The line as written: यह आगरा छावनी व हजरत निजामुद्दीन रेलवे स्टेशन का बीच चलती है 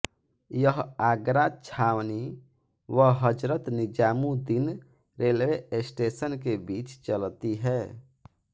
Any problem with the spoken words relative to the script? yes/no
yes